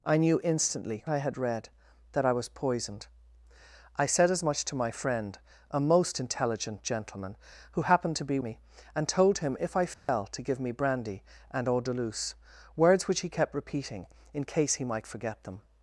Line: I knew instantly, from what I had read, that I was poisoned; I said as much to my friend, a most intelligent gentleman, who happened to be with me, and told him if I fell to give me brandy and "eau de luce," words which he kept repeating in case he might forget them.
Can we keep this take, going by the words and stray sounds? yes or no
no